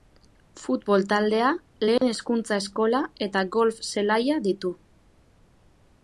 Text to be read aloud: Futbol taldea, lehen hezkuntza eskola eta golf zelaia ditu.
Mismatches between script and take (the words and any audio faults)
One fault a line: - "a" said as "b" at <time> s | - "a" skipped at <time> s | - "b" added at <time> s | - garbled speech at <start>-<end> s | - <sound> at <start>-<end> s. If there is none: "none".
- dropout at 2.0-2.0 s